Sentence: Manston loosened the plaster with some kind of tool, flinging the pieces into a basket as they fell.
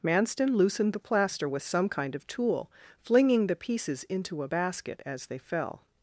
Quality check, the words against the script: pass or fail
pass